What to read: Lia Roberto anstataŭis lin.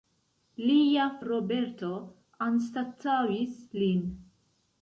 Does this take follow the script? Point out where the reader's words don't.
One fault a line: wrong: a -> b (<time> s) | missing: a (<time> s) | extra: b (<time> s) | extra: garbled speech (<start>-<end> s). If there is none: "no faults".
no faults